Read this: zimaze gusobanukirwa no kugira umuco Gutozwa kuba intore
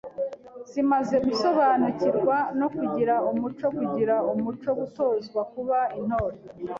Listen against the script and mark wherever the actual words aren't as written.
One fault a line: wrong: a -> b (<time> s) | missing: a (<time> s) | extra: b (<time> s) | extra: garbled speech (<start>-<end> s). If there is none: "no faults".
extra: kugira umuco (3.7 s)